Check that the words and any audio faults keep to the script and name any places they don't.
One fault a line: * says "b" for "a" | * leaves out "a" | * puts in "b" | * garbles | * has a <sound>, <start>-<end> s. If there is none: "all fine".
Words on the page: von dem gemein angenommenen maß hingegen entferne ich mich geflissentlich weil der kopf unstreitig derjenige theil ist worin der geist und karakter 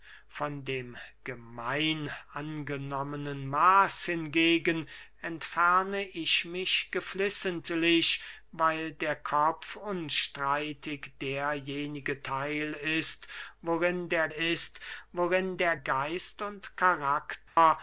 * puts in "ist worin der"
* has a dropout, 17.5-17.6 s